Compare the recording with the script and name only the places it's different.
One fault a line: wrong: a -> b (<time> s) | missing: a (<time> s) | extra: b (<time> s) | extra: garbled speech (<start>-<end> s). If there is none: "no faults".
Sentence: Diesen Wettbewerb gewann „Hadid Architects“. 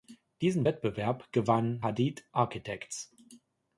no faults